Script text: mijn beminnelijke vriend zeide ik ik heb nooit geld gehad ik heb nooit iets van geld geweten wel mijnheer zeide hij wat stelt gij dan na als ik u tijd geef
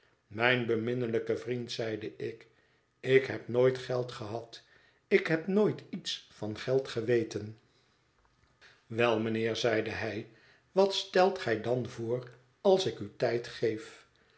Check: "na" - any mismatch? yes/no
yes